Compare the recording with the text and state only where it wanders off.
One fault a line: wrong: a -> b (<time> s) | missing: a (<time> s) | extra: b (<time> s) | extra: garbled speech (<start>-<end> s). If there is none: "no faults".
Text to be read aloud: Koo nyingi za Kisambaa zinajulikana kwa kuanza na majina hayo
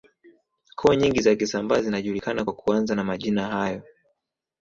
no faults